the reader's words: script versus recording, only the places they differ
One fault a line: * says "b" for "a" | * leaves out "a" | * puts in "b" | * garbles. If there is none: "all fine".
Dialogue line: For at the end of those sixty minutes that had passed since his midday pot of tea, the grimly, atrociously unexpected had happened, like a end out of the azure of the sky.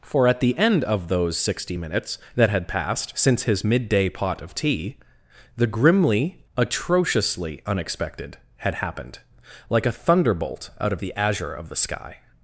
* says "thunderbolt" for "end"